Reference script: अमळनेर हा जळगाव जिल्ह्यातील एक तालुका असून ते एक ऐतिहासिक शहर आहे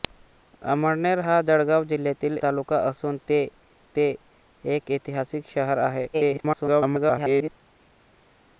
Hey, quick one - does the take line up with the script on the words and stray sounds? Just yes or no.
no